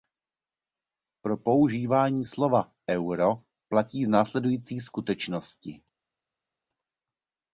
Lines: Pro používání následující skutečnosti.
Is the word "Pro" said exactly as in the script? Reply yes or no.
yes